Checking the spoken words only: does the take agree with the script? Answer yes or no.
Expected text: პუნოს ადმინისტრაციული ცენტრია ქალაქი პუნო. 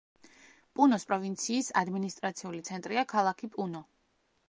no